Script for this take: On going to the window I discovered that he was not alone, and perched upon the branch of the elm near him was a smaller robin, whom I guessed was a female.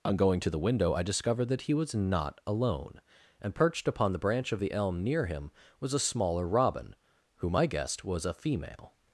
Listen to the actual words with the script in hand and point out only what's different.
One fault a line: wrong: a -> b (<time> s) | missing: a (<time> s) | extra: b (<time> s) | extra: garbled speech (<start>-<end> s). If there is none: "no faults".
no faults